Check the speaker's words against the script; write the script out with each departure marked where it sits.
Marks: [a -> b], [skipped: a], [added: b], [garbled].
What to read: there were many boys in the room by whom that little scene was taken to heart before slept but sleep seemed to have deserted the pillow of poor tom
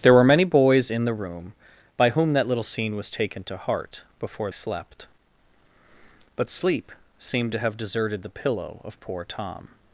there were many boys in the room by whom that little scene was taken to heart before slept but sleep seemed to have deserted the pillow of poor tom